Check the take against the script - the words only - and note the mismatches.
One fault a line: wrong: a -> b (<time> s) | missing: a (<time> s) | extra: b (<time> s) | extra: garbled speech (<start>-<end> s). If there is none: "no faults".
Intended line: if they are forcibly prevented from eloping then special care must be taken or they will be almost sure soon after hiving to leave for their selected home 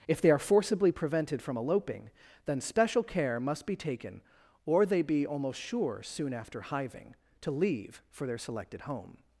missing: will (5.0 s)